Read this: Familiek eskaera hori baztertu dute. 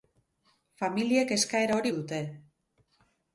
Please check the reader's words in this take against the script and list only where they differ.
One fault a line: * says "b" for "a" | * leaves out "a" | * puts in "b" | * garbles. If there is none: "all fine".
* leaves out "baztertu"